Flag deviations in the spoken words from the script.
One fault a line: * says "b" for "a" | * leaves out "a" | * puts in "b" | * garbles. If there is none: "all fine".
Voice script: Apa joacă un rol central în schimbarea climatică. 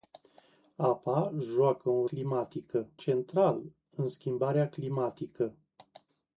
* says "climatică" for "rol"